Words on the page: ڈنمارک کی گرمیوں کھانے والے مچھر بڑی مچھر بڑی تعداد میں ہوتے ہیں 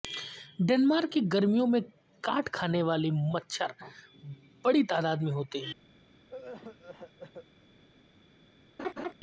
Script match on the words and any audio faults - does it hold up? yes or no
no